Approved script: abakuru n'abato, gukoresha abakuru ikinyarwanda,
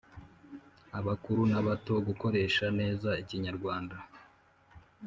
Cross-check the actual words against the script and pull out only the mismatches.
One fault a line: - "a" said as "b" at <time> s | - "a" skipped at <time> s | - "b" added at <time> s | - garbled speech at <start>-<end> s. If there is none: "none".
- "abakuru" said as "neza" at 2.8 s